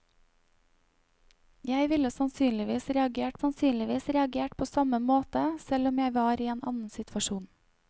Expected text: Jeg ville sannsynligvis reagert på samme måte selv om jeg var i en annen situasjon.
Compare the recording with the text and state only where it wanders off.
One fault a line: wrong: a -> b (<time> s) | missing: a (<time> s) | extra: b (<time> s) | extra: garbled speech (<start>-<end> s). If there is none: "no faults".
extra: sannsynligvis reagert (3.4 s)